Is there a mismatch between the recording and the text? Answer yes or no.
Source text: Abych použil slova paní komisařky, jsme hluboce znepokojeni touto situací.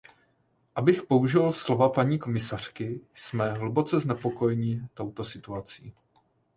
no